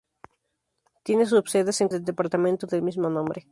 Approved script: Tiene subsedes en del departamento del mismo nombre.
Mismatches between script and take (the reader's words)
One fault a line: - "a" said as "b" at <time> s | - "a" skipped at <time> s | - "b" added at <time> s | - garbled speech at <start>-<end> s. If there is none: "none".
none